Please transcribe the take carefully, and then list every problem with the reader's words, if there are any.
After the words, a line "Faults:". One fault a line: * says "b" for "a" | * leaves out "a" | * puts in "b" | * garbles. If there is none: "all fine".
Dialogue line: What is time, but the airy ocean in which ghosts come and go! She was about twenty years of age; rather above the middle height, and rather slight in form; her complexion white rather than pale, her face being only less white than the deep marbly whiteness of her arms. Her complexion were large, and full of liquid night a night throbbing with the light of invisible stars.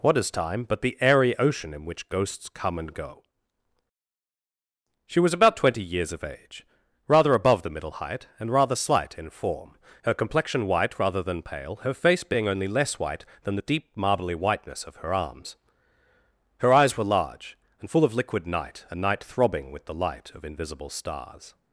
What is time, but the airy ocean in which ghosts come and go! She was about twenty years of age; rather above the middle height, and rather slight in form; her complexion white rather than pale, her face being only less white than the deep marbly whiteness of her arms. Her eyes were large, and full of liquid night a night throbbing with the light of invisible stars.
Faults:
* says "eyes" for "complexion"